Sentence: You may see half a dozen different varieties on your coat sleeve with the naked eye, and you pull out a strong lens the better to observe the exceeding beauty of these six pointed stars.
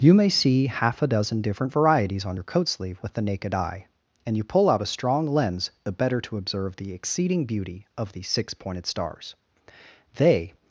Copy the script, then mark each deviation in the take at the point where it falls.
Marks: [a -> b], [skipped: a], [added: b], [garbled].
You may see half a dozen different varieties on your coat sleeve with the naked eye, and you pull out a strong lens the better to observe the exceeding beauty of these six pointed stars. [added: They]